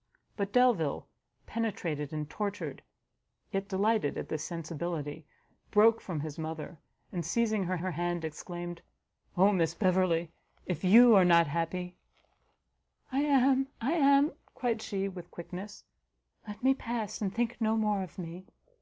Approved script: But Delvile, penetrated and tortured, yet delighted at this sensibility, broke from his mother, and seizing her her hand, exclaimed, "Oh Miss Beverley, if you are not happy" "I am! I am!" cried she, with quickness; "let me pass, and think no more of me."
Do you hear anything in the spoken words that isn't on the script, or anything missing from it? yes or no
no